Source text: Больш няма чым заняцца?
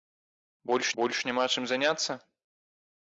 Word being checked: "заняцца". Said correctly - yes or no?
yes